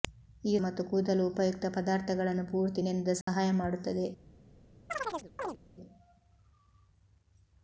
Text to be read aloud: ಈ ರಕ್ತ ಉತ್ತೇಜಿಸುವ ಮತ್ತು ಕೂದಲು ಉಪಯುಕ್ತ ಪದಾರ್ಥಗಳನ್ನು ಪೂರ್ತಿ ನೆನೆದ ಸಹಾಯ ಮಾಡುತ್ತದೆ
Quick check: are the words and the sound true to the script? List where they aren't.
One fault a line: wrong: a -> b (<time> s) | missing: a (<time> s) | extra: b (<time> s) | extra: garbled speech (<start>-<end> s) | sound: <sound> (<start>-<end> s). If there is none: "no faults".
missing: ರಕ್ತ ಉತ್ತೇಜಿಸುವ (0.6 s)
sound: dropout (3.2-3.3 s)
sound: chirp (4.9-5.6 s)